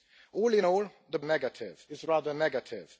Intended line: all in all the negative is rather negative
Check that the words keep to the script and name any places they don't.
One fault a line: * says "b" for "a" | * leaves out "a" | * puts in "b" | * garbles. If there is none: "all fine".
all fine